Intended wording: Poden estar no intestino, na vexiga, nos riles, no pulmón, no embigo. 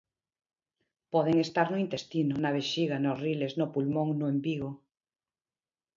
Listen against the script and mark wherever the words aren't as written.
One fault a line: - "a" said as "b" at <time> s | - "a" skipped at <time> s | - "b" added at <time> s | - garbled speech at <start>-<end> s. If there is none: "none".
none